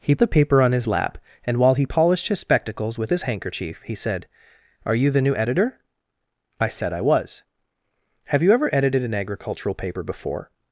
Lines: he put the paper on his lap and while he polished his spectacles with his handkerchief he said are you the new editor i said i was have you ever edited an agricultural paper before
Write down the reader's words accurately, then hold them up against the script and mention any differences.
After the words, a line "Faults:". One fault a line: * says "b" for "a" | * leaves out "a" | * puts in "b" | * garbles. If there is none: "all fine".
he the paper on his lap and while he polished his spectacles with his handkerchief he said are you the new editor i said i was have you ever edited an agricultural paper before
Faults:
* leaves out "put"